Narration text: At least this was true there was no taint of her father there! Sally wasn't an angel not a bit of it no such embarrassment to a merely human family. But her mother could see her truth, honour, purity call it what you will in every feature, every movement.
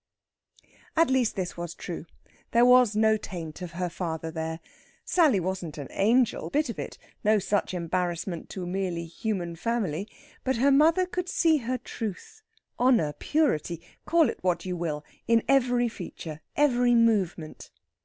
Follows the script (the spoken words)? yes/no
no